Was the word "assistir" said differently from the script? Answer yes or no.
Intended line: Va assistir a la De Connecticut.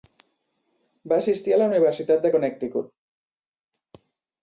no